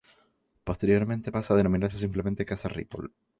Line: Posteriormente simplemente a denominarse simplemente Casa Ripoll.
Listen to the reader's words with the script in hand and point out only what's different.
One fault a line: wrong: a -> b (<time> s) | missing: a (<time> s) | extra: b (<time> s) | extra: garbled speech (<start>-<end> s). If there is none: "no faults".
wrong: simplemente -> pasa (1.3 s)